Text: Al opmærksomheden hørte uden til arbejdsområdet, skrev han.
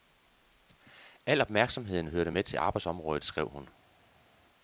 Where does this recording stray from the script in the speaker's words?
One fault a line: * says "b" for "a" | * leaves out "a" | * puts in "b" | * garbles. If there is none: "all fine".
* says "med" for "uden"
* says "hun" for "han"